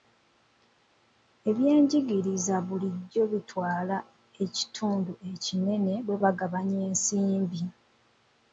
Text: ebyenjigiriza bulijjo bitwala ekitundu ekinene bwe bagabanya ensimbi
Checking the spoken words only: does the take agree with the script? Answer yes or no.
yes